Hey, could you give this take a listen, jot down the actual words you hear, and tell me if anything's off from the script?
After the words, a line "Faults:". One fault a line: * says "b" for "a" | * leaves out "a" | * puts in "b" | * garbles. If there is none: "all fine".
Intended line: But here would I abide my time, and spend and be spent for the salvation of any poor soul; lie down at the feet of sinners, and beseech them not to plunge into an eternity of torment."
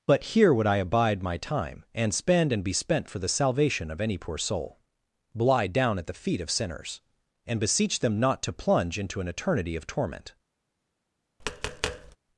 But here would I abide my time, and spend and be spent for the salvation of any poor soul; lie down at the feet of sinners, and beseech them not to plunge into an eternity of torment."
Faults:
all fine